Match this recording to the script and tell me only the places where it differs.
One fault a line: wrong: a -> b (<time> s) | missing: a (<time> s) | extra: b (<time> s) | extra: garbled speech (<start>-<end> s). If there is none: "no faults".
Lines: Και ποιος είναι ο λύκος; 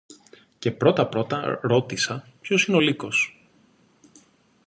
extra: πρώτα πρώτα ρώτησα (0.7 s)